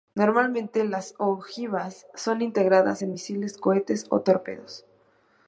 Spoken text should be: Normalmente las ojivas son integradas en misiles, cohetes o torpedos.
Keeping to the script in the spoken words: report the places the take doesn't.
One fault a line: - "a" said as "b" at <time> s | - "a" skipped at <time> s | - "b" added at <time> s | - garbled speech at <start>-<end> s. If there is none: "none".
none